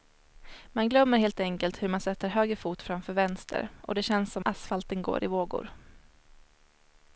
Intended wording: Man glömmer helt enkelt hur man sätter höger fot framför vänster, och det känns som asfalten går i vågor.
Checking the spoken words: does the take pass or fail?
pass